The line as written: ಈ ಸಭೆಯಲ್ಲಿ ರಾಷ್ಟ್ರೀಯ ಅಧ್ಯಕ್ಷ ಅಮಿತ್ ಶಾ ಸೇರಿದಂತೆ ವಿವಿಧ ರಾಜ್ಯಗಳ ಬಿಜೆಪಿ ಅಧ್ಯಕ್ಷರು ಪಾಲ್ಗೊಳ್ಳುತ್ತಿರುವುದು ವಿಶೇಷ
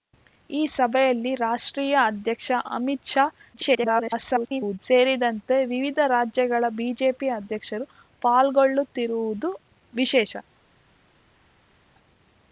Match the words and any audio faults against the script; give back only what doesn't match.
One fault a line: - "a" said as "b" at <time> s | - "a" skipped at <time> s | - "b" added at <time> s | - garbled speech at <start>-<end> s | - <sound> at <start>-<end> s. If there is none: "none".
- garbled speech at 3.5-4.8 s